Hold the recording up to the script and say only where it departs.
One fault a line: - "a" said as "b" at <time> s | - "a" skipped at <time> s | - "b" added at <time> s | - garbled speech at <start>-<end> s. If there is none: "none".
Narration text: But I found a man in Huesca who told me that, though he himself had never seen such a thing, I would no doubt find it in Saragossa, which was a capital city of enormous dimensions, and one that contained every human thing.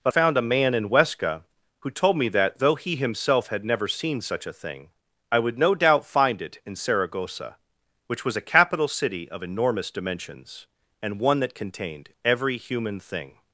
- "I" skipped at 0.1 s